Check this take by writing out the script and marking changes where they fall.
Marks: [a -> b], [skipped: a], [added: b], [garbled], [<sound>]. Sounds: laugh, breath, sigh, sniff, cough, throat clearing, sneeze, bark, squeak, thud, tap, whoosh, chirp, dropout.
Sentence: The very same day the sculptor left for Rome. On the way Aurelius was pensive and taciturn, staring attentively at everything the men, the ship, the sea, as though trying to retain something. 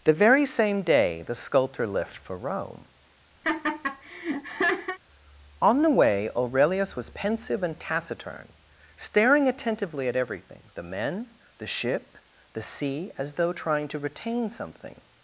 The very same day the sculptor left for Rome. [laugh] On the way Aurelius was pensive and taciturn, staring attentively at everything the men, the ship, the sea, as though trying to retain something.